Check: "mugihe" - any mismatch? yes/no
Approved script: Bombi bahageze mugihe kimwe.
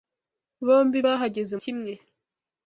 yes